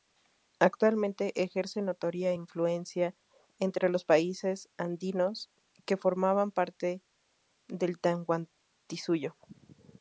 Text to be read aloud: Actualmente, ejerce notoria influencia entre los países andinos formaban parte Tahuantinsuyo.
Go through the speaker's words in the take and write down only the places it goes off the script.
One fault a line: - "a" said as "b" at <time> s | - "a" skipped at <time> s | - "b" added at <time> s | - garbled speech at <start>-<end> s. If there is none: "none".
- "que" added at 5.8 s
- "del" added at 7.7 s